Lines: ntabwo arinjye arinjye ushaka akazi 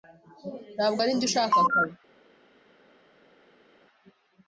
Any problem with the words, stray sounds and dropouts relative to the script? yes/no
yes